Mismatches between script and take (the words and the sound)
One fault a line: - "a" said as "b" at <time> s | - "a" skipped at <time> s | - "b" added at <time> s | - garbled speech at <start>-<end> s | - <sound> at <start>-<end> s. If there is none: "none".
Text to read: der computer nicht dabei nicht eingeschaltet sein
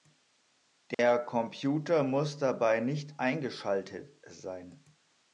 - dropout at 0.9-1.0 s
- "nicht" said as "muss" at 2.0 s